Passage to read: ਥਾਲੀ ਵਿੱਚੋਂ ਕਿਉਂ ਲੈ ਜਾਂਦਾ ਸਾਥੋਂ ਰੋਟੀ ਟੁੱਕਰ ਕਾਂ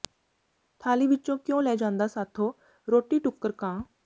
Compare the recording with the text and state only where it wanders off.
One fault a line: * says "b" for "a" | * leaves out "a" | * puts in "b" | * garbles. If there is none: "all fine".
all fine